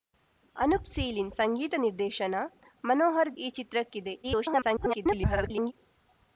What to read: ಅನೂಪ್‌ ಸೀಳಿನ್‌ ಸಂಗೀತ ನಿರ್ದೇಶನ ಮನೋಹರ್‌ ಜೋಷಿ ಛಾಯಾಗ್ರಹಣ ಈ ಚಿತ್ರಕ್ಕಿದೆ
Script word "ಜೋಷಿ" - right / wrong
wrong